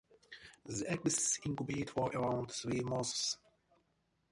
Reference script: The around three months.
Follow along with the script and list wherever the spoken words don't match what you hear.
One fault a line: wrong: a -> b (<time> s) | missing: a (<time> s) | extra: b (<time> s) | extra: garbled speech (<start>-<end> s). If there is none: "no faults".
extra: eggs incubate for (0.9 s)